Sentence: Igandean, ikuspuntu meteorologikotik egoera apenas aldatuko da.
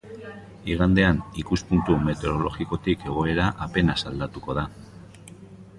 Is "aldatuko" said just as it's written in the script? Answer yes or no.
yes